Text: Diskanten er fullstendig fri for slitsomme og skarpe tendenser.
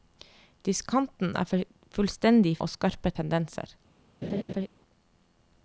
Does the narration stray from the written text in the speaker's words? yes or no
yes